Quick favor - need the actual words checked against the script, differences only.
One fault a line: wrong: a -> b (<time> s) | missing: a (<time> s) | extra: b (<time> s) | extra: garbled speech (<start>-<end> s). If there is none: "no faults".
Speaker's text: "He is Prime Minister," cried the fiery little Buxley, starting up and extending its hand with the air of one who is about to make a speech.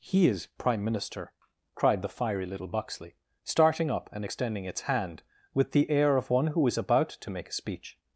no faults